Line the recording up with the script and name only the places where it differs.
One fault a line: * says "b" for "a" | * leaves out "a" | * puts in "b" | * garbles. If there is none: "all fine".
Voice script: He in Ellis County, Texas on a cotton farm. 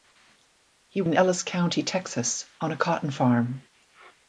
all fine